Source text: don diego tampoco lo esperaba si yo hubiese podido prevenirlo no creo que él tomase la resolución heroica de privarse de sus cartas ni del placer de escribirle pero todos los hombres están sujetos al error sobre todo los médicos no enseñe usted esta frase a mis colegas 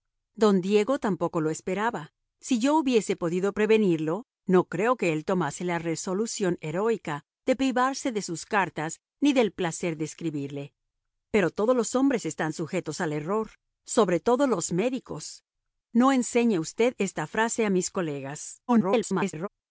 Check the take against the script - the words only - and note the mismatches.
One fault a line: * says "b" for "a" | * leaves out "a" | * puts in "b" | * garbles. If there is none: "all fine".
* garbles